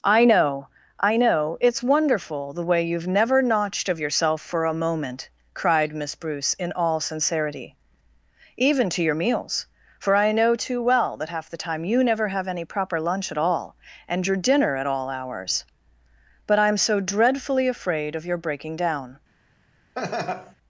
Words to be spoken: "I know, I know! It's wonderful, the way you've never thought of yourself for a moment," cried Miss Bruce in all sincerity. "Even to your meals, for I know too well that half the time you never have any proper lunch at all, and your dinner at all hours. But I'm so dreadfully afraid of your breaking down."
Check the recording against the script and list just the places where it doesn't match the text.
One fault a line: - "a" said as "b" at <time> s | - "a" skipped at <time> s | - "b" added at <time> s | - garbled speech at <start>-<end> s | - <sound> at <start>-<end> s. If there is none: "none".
- "thought" said as "notched" at 3.4 s
- laugh at 20.0-20.6 s